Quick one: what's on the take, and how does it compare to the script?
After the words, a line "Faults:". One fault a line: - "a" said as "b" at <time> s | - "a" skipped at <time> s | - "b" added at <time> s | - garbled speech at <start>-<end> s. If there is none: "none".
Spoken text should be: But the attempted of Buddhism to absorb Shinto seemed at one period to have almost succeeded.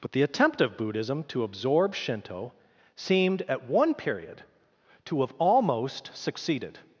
But the attempt of Buddhism to absorb Shinto seemed at one period to have almost succeeded.
Faults:
- "attempted" said as "attempt" at 0.2 s